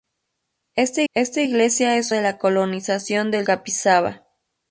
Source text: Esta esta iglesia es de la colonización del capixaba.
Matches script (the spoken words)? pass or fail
pass